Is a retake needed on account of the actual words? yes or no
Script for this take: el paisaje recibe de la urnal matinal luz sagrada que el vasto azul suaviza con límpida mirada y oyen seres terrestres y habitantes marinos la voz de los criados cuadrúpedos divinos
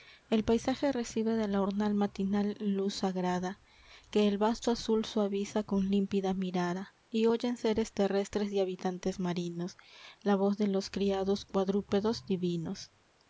no